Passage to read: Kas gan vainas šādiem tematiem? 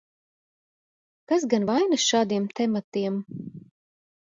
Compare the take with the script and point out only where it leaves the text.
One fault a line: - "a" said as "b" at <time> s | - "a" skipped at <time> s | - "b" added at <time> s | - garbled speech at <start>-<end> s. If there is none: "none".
none